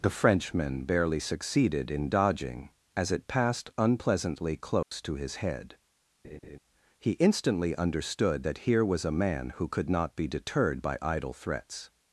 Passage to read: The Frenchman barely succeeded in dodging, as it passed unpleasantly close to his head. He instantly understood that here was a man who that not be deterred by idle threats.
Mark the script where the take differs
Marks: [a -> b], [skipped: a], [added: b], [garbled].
The Frenchman barely succeeded in dodging, as it passed unpleasantly close to his head. He instantly understood that here was a man who [that -> could] not be deterred by idle threats.